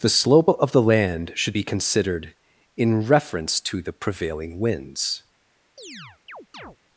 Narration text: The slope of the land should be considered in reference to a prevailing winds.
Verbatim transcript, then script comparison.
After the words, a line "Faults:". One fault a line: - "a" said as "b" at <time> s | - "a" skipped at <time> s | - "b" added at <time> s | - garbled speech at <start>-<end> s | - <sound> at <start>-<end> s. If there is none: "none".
The slope of the land should be considered in reference to the prevailing winds.
Faults:
- "a" said as "the" at 3.8 s
- chirp at 5.8-6.8 s